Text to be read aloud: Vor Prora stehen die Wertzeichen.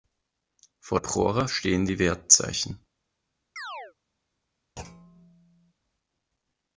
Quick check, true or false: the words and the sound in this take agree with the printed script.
false